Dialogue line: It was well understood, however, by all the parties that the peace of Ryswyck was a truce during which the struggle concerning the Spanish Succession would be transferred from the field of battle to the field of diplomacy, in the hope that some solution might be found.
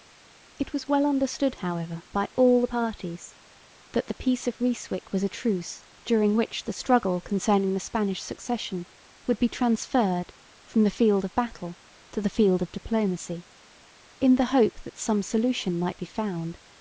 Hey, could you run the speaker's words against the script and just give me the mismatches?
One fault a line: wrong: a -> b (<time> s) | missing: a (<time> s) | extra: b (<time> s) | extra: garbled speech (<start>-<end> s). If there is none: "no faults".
no faults